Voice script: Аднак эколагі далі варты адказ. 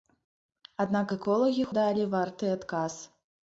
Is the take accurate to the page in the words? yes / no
yes